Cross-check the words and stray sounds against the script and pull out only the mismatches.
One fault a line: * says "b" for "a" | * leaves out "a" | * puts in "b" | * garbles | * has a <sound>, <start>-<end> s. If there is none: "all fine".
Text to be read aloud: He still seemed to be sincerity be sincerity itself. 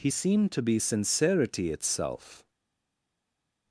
* leaves out "still"
* leaves out "be sincerity"